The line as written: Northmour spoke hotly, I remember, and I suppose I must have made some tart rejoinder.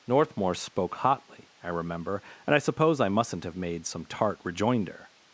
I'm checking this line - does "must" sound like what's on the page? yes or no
no